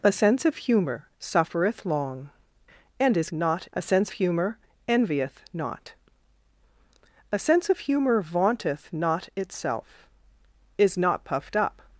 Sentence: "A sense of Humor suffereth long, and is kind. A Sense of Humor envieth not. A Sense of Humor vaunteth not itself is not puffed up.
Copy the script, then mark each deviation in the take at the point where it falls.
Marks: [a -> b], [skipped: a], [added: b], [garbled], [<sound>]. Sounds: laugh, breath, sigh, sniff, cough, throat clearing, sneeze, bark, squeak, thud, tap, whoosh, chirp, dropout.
"A sense of Humor suffereth long, and is [kind. -> not] A Sense [skipped: of] Humor envieth not. A Sense of Humor vaunteth not itself is not puffed up.